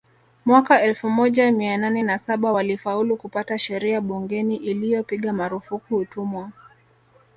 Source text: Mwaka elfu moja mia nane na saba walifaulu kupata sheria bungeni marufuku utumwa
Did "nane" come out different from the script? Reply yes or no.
no